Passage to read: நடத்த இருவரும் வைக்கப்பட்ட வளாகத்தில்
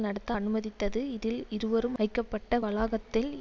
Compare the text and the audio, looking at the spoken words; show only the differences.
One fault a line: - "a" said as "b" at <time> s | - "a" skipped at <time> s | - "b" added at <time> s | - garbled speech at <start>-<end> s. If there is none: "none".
- "அனுமதித்தது இதில்" added at 0.3 s